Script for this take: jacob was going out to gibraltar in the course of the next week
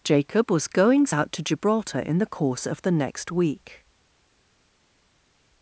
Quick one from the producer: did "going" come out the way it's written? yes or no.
no